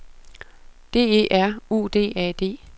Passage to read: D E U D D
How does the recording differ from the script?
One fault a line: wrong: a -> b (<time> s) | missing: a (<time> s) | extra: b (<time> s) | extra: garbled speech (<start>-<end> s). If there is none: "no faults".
extra: R (1.3 s)
extra: A (2.1 s)